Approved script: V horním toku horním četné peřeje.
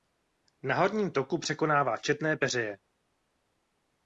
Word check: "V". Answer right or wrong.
wrong